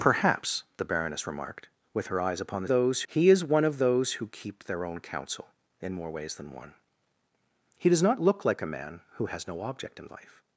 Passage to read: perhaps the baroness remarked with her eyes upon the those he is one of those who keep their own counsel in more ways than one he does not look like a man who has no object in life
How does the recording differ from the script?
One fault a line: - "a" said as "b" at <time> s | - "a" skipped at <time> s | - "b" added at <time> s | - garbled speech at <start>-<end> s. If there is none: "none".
none